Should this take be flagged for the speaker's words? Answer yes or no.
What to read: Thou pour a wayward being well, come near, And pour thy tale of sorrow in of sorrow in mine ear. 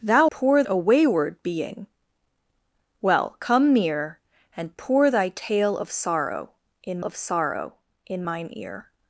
no